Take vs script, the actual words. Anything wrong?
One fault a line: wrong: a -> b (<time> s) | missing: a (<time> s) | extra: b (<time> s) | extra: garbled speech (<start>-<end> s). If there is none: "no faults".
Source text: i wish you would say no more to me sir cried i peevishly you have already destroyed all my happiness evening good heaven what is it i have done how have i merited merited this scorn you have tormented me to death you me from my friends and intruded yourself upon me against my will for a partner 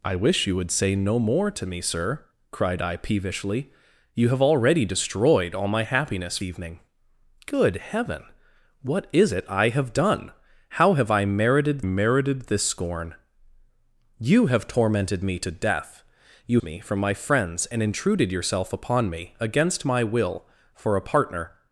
no faults